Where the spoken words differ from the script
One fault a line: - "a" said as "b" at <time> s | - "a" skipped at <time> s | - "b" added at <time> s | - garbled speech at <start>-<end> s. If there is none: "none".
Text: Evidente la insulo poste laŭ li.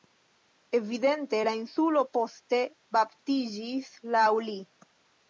- "baptiĝis" added at 3.0 s